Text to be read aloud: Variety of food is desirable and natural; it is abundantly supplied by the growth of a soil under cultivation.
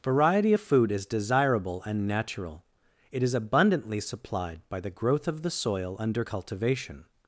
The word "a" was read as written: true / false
false